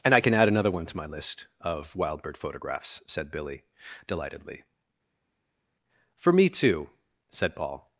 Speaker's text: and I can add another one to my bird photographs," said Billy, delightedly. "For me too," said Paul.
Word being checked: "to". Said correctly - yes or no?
yes